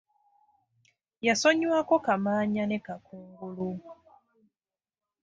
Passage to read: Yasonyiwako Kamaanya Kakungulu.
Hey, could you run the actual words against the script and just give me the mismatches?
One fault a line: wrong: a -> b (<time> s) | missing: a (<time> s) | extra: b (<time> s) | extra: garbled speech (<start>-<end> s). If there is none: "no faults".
extra: ne (2.7 s)